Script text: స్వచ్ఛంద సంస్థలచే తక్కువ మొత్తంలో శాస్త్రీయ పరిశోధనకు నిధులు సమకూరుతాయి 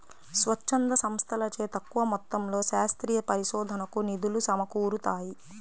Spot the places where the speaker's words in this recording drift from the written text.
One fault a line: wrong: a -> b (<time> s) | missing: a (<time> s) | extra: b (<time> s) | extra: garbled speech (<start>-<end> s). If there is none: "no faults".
no faults